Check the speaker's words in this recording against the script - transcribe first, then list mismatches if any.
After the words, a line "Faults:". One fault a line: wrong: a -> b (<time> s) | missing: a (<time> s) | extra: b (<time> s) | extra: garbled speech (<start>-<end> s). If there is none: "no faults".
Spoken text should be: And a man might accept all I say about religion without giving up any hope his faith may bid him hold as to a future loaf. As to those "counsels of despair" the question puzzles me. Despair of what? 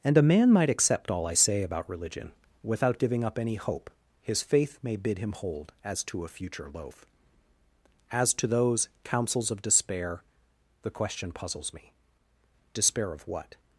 And a man might accept all I say about religion without giving up any hope his faith may bid him hold as to a future loaf. As to those "counsels of despair" the question puzzles me. Despair of what?
Faults:
no faults